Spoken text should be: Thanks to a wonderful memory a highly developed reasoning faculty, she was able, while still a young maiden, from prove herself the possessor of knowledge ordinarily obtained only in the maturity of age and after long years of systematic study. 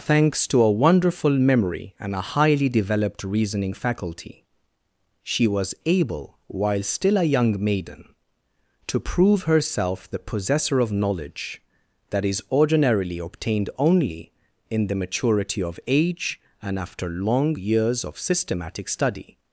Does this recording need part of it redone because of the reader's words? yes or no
yes